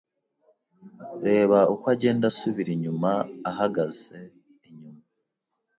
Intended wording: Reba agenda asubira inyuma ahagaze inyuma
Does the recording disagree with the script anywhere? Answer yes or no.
yes